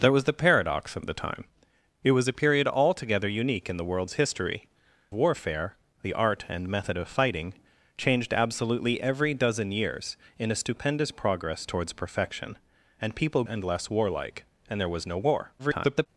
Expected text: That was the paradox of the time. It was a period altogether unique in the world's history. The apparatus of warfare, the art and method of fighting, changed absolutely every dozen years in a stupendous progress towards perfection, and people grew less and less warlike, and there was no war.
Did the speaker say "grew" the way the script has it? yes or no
no